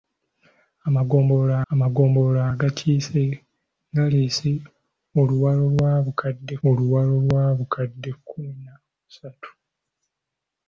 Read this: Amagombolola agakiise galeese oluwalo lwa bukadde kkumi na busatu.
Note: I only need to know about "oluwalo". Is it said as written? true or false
true